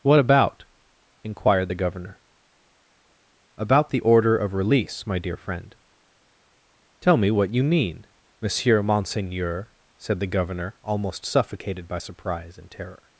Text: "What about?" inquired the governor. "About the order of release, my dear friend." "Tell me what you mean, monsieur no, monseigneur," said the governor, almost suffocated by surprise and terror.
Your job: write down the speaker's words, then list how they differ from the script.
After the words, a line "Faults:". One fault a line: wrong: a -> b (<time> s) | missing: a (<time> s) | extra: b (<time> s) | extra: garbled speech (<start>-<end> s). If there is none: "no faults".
"What about?" inquired the governor. "About the order of release, my dear friend." "Tell me what you mean, monsieur monseigneur," said the governor, almost suffocated by surprise and terror.
Faults:
missing: no (8.8 s)